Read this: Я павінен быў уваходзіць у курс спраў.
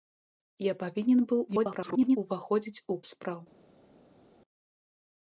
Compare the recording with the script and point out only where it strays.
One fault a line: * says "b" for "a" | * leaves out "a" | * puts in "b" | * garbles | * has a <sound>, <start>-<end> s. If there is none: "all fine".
* garbles
* leaves out "курс"